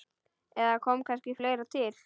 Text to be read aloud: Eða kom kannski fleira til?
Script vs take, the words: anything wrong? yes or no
no